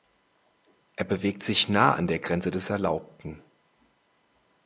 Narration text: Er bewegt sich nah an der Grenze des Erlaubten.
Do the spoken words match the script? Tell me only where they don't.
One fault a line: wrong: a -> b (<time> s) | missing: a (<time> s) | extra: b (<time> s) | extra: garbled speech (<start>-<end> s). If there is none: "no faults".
no faults